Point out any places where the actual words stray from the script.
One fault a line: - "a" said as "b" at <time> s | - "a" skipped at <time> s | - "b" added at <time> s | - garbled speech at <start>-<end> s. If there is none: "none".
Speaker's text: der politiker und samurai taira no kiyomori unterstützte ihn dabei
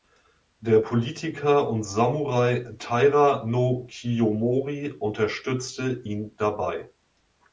none